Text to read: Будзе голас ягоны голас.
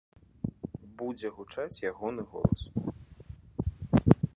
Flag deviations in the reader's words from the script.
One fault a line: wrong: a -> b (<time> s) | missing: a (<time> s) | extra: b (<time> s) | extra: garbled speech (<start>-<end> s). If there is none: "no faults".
wrong: голас -> гучаць (1.4 s)